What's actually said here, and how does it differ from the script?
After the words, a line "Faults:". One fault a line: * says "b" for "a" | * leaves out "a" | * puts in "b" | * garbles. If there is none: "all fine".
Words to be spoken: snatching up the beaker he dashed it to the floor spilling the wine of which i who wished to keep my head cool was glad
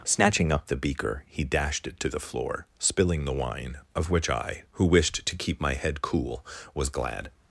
snatching up the beaker he dashed it to the floor spilling the wine of which i who wished to keep my head cool was glad
Faults:
all fine